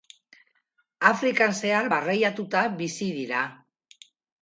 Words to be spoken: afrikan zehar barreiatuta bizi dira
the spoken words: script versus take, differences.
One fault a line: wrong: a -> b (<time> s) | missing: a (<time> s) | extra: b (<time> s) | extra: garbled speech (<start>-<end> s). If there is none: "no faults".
no faults